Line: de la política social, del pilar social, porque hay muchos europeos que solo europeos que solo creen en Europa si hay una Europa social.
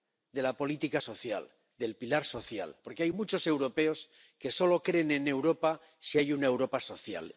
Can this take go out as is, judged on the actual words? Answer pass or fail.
fail